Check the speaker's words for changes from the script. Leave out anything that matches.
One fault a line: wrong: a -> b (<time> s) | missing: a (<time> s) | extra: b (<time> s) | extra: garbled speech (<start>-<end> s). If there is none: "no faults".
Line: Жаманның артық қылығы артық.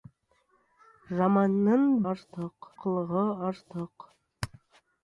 no faults